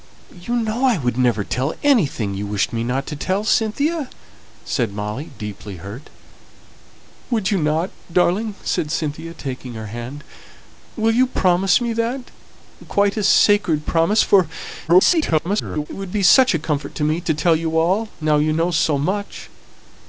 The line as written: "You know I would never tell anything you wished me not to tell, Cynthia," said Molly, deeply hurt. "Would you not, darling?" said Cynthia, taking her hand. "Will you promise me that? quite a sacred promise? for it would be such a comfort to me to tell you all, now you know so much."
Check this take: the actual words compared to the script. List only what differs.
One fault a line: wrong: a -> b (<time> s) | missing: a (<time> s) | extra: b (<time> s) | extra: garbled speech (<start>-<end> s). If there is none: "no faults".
extra: garbled speech (14.9-15.9 s)